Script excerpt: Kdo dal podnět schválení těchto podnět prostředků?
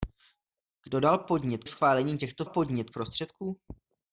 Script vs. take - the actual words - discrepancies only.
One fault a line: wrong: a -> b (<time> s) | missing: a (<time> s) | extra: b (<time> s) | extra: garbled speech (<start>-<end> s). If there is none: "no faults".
no faults